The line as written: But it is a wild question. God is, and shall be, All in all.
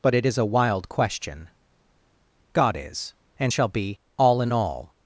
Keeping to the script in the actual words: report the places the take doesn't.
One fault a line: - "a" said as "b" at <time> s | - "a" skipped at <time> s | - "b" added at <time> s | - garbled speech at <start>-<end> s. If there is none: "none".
none